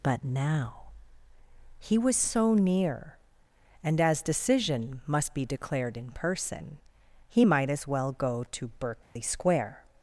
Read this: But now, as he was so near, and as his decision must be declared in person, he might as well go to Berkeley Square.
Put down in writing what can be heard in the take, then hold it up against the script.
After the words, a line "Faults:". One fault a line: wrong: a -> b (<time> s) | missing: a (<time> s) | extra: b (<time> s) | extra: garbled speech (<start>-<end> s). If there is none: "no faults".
But now, he was so near, and as decision must be declared in person, he might as well go to Berkeley Square.
Faults:
missing: as (0.8 s)
missing: his (4.2 s)